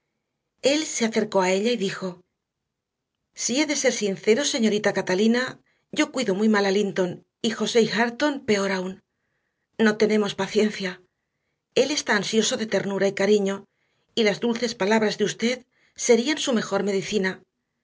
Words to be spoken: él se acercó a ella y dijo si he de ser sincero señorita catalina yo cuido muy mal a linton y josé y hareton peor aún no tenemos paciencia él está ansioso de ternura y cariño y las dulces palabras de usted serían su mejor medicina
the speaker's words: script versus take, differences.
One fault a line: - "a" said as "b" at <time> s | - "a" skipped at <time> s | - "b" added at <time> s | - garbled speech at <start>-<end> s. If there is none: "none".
none